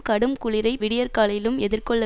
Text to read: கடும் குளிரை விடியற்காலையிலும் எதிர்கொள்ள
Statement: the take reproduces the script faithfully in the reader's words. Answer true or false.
true